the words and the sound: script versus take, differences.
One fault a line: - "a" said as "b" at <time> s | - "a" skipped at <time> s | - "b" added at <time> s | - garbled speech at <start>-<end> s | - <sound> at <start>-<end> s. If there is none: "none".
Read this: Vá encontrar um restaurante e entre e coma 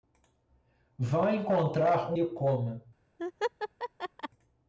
- "restaurante e entre" skipped at 2.2 s
- laugh at 3.2-4.3 s